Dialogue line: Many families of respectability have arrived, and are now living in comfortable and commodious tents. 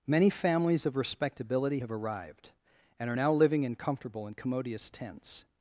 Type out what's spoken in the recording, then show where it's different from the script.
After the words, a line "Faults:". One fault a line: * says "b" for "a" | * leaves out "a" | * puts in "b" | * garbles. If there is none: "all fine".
Many families of respectability have arrived, and are now living in comfortable and commodious tents.
Faults:
all fine